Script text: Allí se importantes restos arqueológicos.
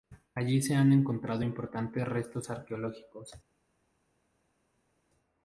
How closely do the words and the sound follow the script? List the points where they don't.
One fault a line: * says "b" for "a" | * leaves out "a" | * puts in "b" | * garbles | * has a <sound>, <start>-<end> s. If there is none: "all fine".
* puts in "han encontrado"